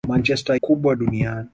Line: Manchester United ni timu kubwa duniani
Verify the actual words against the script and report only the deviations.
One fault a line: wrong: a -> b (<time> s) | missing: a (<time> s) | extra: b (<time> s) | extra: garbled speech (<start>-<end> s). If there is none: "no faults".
missing: United ni timu (0.6 s)